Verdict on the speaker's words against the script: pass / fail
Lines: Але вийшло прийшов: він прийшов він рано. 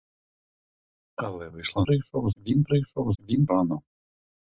pass